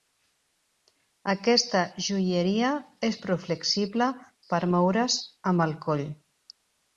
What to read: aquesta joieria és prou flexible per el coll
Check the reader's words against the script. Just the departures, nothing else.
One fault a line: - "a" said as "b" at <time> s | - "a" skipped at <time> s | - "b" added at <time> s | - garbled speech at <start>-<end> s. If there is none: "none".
- "moure's amb" added at 4.8 s